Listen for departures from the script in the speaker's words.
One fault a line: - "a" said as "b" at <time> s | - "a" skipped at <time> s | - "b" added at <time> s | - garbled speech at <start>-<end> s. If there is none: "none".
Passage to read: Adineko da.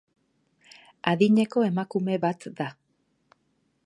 - "emakume bat" added at 1.7 s